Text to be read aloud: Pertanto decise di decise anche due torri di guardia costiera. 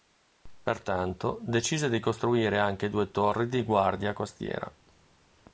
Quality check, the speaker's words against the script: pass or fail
fail